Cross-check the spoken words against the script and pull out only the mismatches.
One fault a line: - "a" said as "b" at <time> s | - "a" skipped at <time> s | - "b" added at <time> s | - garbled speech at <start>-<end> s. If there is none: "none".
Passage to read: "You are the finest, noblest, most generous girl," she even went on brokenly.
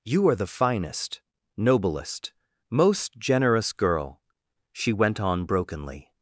- "even" skipped at 4.9 s